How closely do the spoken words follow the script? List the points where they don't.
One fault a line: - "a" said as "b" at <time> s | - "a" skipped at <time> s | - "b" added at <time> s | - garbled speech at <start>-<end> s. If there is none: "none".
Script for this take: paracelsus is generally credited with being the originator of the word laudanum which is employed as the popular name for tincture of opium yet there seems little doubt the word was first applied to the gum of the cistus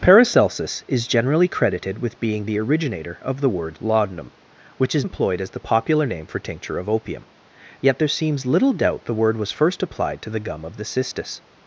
none